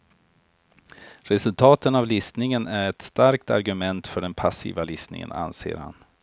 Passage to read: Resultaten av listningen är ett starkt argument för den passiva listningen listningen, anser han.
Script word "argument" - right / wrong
right